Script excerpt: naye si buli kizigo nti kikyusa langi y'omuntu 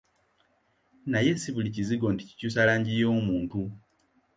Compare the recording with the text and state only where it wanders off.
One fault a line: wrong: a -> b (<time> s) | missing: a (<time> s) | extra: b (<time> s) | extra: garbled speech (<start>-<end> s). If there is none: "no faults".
no faults